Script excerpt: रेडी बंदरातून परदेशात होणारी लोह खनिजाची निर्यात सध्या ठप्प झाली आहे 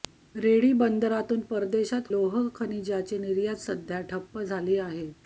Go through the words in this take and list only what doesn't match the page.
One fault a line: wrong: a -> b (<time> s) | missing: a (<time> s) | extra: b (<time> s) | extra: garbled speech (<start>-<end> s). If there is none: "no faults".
missing: होणारी (2.1 s)